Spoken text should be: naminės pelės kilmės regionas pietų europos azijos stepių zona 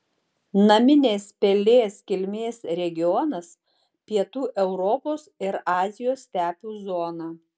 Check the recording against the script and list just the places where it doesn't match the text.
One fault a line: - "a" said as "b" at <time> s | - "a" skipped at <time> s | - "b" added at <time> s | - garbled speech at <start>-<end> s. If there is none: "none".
- "ir" added at 5.5 s